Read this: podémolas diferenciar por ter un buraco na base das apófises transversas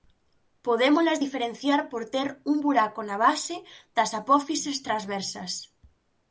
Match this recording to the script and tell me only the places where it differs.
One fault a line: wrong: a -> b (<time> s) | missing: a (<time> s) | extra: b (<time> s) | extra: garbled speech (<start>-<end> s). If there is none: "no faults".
no faults